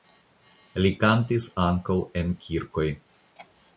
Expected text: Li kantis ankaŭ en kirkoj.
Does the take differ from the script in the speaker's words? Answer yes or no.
no